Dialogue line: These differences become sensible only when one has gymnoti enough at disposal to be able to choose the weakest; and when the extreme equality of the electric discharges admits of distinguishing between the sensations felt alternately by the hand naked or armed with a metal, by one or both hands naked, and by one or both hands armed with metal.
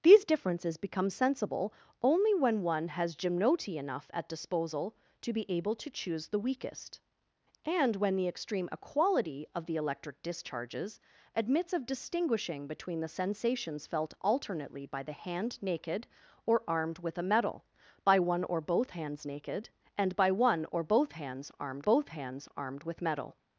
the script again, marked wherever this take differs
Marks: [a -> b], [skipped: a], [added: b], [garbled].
These differences become sensible only when one has gymnoti enough at disposal to be able to choose the weakest; and when the extreme equality of the electric discharges admits of distinguishing between the sensations felt alternately by the hand naked or armed with a metal, by one or both hands naked, and by one or both hands armed [added: both hands armed] with metal.